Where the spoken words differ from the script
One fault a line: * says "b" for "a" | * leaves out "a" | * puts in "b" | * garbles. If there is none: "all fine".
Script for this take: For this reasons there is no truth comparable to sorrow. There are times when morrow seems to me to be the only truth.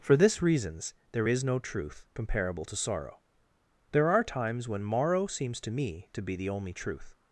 all fine